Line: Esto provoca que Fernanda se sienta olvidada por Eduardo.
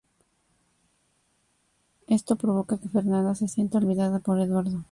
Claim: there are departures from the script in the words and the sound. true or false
false